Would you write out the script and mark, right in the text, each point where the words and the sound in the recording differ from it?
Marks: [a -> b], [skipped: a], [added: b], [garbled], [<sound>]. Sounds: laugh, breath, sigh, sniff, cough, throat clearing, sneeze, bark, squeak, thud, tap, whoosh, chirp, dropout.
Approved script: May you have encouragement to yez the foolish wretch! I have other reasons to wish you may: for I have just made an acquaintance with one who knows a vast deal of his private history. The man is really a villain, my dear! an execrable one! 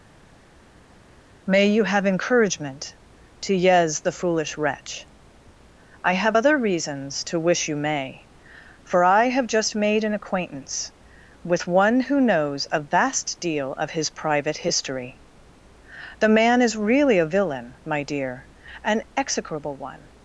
May you have encouragement to yez the foolish wretch! I have other reasons to wish you may: for I have just made an acquaintance with one who knows a vast deal of his private history. The man is really a villain, my dear! an execrable one!